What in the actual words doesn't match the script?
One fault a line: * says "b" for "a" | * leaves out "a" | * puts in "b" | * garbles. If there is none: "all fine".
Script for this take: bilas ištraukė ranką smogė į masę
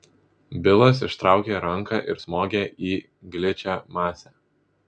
* puts in "ir"
* puts in "gličią"